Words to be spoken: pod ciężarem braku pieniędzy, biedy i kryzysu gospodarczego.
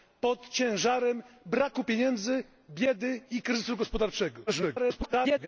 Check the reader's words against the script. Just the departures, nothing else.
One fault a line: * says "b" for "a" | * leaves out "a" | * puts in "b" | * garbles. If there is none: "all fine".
* garbles